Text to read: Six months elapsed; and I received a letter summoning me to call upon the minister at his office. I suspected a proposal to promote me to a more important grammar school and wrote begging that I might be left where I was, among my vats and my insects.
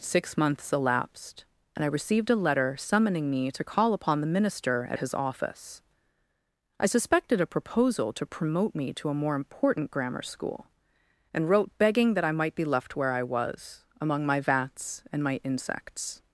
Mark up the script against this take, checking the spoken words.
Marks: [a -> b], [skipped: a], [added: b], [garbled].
Six months elapsed; and I received a letter summoning me to call upon the minister at his office. I suspected a proposal to promote me to a more important grammar school and wrote begging that I might be left where I was, among my vats and my insects.